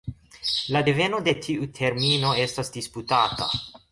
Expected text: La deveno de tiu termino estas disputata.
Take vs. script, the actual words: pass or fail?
pass